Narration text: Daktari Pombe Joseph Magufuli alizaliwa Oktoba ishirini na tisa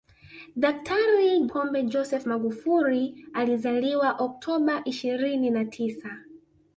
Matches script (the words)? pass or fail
pass